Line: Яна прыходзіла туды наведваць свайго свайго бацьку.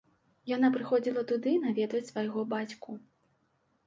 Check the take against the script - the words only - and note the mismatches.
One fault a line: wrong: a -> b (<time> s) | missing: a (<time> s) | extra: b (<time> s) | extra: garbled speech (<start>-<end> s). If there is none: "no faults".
missing: свайго (2.5 s)